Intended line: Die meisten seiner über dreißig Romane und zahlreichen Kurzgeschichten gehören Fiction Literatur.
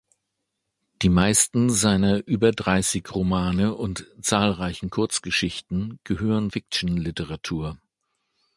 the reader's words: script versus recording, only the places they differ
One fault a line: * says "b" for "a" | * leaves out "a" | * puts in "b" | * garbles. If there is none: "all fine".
all fine